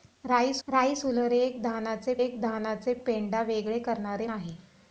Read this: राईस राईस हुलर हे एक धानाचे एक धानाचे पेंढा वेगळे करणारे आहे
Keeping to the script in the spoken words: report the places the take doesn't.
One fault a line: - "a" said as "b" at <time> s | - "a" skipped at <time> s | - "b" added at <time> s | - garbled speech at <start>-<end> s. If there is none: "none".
none